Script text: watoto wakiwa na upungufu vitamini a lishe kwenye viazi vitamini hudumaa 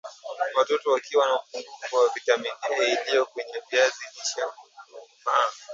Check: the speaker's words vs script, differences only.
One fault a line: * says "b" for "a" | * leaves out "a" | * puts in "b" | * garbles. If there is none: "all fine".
* puts in "wa"
* says "iliyo" for "lishe"
* says "lishe" for "vitamini"